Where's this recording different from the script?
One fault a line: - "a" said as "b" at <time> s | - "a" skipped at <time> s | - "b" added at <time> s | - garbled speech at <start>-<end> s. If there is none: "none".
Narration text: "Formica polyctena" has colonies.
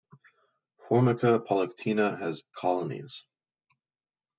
none